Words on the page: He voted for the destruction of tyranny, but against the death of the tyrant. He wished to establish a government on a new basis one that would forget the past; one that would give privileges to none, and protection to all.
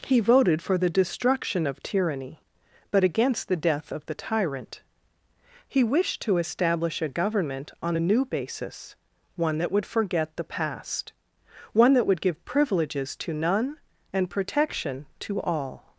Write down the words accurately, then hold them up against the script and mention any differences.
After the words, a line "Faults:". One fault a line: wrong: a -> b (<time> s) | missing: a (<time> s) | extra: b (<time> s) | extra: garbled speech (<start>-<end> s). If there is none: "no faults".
He voted for the destruction of tyranny, but against the death of the tyrant. He wished to establish a government on a new basis one that would forget the past; one that would give privileges to none, and protection to all.
Faults:
no faults